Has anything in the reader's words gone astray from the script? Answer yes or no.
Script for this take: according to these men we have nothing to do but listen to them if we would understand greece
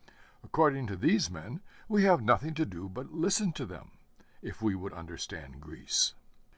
no